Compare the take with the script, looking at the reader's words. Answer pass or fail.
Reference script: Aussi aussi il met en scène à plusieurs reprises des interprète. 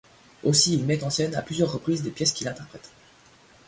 fail